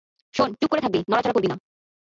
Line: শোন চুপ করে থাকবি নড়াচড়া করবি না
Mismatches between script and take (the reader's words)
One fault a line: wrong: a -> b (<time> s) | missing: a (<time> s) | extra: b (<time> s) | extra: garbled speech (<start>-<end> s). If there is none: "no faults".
no faults